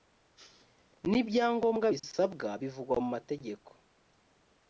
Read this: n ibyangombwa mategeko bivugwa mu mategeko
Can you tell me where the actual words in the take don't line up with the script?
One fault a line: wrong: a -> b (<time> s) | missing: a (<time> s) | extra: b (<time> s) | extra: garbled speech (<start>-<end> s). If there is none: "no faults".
wrong: mategeko -> bisabwa (1.9 s)